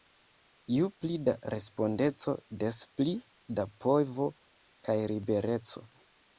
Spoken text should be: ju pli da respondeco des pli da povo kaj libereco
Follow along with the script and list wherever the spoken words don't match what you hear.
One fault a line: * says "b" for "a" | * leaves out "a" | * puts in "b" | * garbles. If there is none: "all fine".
all fine